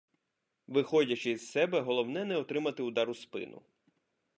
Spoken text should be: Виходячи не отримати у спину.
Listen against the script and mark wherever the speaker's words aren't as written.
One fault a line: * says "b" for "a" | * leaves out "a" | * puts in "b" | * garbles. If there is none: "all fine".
* puts in "із себе головне"
* puts in "удар"